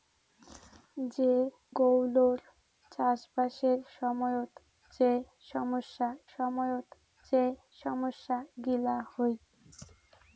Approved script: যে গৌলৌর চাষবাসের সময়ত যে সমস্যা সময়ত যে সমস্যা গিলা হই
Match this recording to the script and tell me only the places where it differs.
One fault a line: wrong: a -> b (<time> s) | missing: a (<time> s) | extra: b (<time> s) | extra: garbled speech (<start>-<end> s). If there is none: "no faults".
no faults